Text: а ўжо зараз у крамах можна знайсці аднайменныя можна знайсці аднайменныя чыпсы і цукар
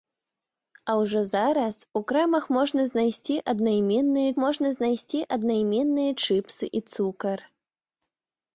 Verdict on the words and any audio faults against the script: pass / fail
pass